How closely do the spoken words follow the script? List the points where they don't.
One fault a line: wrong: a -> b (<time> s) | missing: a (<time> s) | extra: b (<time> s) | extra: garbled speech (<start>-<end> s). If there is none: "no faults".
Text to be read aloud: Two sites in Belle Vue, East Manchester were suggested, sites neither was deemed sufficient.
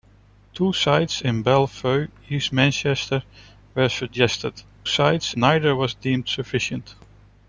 no faults